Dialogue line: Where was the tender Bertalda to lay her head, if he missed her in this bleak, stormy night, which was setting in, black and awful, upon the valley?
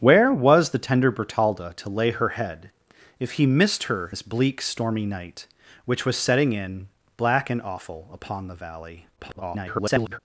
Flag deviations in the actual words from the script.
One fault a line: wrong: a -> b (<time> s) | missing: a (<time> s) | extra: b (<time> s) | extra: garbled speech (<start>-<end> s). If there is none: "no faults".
missing: in (4.1 s)
extra: garbled speech (9.2-10.2 s)